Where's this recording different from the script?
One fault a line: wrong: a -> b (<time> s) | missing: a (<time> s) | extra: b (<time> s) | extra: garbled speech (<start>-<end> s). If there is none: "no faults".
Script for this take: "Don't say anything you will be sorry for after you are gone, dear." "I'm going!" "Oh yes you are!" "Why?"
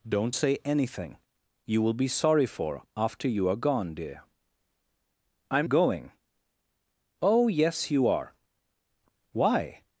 no faults